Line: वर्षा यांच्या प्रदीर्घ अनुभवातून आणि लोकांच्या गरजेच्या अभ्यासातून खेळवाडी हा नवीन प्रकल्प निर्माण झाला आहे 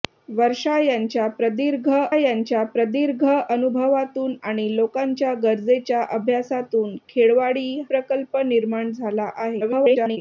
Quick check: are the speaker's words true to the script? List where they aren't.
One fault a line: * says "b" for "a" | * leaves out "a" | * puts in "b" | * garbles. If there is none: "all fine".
* puts in "यांच्या प्रदीर्घ"
* leaves out "हा नवीन"
* garbles